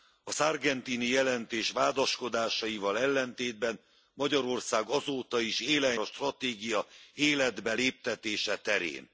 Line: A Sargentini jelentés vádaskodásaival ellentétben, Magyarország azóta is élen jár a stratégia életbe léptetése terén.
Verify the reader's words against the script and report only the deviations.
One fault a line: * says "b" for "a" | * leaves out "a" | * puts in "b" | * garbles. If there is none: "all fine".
* leaves out "jár"